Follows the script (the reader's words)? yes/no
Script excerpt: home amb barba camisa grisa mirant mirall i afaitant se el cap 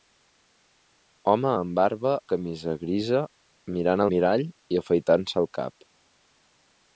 yes